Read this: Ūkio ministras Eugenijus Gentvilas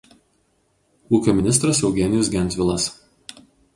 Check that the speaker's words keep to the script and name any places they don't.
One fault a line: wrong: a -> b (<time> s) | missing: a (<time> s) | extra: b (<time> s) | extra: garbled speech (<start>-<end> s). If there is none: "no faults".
no faults